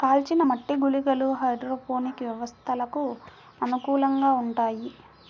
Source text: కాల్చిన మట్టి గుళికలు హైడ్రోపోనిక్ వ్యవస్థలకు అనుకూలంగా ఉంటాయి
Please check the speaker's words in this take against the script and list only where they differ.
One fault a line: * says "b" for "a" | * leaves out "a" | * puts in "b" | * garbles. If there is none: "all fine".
all fine